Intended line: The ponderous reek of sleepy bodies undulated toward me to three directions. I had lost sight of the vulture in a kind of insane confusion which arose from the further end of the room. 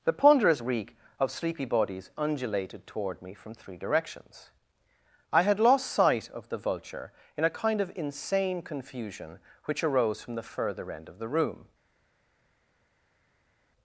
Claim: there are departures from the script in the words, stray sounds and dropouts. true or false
true